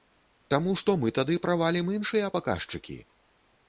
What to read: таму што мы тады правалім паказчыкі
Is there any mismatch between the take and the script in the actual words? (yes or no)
yes